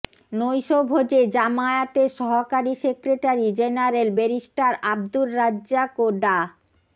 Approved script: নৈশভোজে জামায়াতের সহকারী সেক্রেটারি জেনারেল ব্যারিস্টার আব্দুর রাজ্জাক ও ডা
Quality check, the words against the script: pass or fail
pass